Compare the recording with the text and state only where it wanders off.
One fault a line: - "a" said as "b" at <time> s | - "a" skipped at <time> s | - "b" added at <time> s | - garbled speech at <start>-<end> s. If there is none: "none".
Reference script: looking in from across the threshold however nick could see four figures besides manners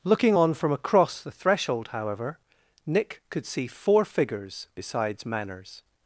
- "in" said as "on" at 0.3 s